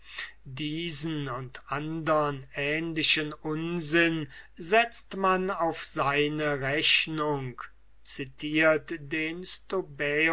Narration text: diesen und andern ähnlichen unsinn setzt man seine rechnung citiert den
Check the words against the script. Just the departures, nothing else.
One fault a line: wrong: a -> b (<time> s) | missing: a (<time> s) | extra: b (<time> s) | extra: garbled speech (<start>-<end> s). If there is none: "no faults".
extra: auf (5.5 s)